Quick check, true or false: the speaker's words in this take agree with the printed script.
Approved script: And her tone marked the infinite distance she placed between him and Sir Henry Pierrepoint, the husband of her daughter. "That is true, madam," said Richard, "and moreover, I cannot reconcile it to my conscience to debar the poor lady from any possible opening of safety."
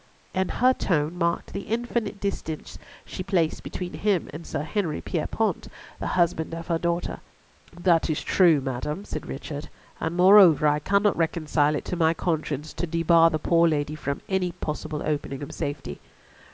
true